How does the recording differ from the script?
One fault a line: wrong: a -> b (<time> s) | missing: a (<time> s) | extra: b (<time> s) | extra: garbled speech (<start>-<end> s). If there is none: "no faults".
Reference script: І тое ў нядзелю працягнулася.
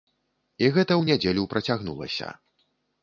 wrong: тое -> гэта (0.8 s)